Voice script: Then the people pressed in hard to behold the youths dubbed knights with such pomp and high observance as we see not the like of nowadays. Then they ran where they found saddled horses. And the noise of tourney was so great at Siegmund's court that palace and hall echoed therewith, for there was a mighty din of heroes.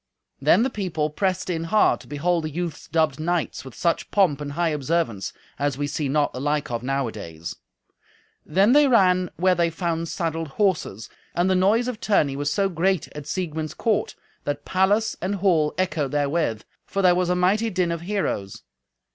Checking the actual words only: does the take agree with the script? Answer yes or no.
yes